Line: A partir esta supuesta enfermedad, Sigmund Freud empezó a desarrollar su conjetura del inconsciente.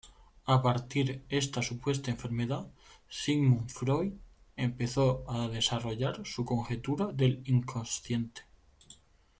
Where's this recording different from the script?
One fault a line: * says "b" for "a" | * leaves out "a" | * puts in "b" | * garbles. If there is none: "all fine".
all fine